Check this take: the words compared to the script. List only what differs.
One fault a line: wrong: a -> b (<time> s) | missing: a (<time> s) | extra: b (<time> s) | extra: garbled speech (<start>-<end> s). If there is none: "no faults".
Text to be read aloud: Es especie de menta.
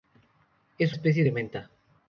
no faults